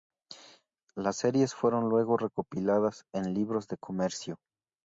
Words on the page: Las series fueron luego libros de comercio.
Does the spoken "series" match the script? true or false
true